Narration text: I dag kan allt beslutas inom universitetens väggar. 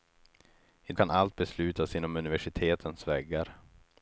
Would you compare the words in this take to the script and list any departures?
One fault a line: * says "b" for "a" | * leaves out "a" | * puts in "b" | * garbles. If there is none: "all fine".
* leaves out "dag"